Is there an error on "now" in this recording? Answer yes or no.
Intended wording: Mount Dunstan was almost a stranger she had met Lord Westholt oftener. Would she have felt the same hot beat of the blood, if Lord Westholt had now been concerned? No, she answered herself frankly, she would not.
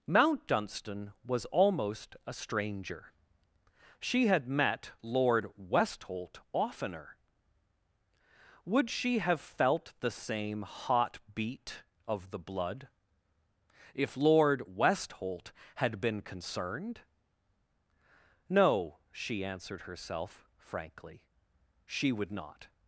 yes